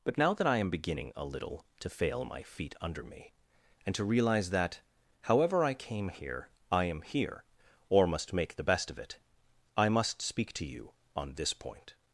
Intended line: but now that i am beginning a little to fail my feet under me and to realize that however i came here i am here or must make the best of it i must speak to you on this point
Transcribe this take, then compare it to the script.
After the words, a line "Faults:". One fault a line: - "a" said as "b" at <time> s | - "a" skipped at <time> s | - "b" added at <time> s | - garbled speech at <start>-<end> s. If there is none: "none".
but now that i am beginning a little to fail my feet under me and to realize that however i came here i am here or must make the best of it i must speak to you on this point
Faults:
none